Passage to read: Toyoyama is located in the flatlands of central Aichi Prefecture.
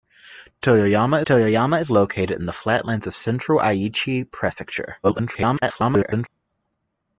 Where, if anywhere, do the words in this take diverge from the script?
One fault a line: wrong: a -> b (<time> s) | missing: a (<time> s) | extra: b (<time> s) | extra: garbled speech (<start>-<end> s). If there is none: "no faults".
extra: toyoyama (1.3 s)
extra: garbled speech (5.0-6.3 s)